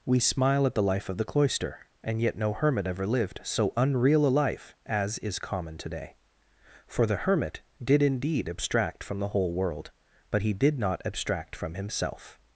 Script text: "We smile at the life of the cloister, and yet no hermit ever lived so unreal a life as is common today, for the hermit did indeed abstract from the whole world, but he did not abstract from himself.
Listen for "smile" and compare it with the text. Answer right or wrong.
right